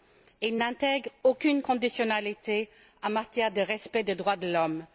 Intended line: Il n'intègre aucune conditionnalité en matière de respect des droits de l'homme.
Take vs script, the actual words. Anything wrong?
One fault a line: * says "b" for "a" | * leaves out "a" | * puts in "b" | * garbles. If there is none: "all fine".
all fine